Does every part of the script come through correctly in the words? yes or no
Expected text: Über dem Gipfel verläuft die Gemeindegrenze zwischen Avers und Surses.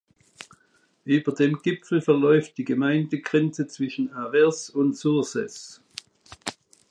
yes